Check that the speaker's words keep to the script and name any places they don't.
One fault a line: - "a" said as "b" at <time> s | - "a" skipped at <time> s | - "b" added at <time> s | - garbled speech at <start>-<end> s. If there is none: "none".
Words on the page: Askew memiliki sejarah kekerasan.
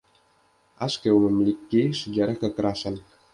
none